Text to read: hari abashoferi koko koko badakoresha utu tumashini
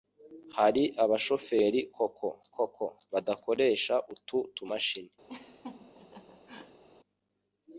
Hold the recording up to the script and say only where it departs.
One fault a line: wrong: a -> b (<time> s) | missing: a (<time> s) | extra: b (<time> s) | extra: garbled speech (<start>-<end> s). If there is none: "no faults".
no faults